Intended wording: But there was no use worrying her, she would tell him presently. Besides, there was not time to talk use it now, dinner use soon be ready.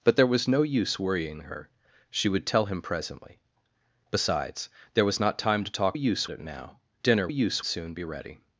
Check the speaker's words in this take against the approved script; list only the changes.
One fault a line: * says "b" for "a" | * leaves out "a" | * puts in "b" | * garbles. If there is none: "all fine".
all fine